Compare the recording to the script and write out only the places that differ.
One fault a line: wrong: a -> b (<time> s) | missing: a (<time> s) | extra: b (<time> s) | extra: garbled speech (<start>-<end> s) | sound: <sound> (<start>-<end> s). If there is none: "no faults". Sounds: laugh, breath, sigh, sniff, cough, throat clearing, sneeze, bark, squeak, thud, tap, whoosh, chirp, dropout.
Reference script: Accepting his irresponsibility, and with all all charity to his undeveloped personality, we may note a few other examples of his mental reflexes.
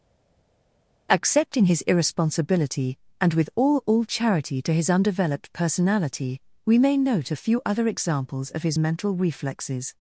no faults